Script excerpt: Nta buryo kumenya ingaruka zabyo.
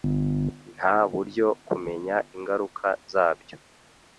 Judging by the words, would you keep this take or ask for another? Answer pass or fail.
pass